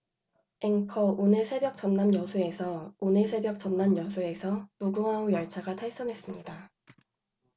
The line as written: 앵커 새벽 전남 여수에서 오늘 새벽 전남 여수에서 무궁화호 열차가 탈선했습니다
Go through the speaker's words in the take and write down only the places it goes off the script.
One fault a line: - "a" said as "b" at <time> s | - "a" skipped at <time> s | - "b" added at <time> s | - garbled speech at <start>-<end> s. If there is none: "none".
- "오늘" added at 1.2 s